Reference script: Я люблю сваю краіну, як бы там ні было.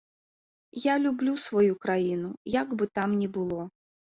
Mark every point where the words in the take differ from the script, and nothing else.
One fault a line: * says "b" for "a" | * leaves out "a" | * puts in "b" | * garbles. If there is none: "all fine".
all fine